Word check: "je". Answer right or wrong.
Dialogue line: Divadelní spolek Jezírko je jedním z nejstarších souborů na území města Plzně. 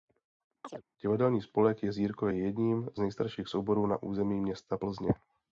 right